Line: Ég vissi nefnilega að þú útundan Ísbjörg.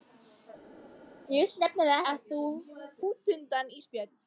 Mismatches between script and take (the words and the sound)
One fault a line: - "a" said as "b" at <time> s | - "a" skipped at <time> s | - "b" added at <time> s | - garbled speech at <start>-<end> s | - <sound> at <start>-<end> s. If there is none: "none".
none